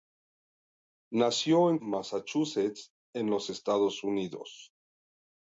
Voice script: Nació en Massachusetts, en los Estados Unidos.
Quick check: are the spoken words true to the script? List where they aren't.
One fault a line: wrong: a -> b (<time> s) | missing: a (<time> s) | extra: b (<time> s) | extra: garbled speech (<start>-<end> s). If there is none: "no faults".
no faults